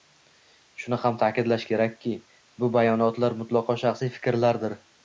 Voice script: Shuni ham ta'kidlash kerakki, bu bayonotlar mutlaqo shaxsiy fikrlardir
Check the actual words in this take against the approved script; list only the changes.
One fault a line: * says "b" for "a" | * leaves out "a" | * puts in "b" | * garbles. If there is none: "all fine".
all fine